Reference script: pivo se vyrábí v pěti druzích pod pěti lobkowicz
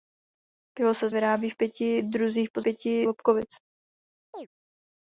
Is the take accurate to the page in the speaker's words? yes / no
yes